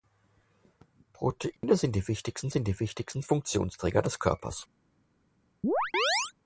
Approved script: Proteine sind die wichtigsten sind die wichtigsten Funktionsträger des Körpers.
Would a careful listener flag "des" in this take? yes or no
no